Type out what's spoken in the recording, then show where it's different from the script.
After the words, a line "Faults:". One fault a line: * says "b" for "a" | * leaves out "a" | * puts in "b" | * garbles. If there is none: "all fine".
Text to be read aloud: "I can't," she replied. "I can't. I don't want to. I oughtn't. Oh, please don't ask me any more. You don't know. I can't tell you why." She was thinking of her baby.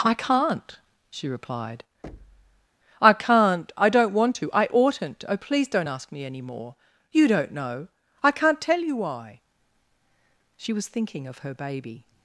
"I can't," she replied. "I can't. I don't want to. I oughtn't. Oh, please don't ask me any more. You don't know. I can't tell you why." She was thinking of her baby.
Faults:
all fine